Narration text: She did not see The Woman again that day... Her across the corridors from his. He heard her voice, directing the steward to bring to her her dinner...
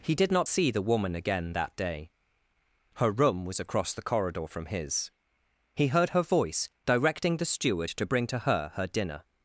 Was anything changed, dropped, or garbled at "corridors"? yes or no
yes